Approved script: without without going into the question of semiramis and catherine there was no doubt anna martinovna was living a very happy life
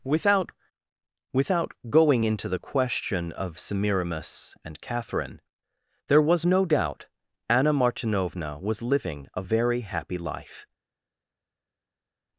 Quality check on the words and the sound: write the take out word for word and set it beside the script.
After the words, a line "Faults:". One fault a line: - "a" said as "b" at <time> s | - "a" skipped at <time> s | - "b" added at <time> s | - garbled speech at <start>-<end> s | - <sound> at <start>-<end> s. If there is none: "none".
without without going into the question of semiramis and catherine there was no doubt anna martinovna was living a very happy life
Faults:
none